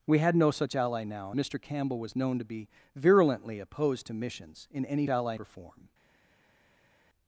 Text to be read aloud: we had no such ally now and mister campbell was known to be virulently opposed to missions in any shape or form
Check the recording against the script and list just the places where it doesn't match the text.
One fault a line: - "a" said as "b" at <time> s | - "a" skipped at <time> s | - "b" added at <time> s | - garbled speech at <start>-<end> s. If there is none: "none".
- "and" skipped at 1.3 s
- "shape" said as "ally" at 5.1 s